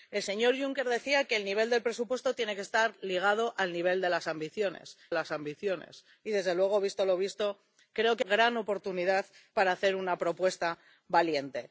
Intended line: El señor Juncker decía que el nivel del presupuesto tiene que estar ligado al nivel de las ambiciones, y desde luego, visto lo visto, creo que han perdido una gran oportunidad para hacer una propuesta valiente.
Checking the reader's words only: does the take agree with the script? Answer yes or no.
no